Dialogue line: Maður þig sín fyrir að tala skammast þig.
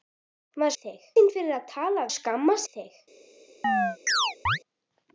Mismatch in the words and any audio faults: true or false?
true